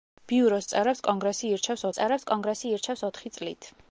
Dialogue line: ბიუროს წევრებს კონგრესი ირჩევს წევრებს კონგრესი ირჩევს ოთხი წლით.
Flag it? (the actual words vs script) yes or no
no